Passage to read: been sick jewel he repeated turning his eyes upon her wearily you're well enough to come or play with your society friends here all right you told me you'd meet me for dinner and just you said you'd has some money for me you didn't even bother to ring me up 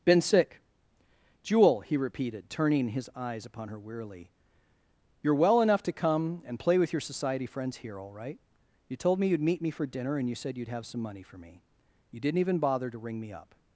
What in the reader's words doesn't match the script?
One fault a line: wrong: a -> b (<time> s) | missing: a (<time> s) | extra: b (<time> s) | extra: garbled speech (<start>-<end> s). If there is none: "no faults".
wrong: or -> and (6.4 s)
missing: just (10.3 s)
wrong: has -> have (10.7 s)